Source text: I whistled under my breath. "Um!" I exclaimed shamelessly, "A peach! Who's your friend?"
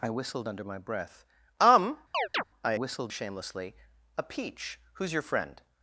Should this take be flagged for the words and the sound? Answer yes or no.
yes